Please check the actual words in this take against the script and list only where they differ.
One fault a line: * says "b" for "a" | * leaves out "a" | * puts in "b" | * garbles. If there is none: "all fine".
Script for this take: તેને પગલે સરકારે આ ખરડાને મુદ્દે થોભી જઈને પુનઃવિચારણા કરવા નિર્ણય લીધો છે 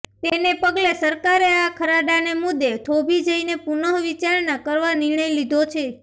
all fine